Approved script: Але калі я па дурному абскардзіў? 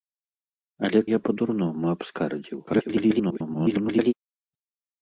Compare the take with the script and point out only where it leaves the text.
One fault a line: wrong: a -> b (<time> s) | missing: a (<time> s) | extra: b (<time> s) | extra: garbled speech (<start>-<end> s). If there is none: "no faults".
missing: калі (1.0 s)
extra: garbled speech (2.7-4.1 s)